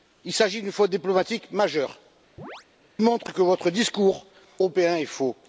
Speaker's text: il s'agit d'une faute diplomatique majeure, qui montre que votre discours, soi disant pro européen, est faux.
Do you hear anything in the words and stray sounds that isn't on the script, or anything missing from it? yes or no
yes